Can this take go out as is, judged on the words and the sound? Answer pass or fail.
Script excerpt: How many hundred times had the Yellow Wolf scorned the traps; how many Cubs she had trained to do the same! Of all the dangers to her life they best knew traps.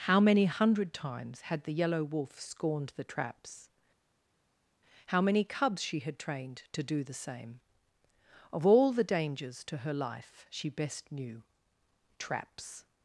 fail